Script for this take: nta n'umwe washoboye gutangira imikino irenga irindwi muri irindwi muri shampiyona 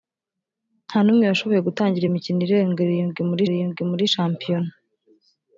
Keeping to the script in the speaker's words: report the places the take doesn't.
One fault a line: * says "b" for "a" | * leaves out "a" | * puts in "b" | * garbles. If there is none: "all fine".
all fine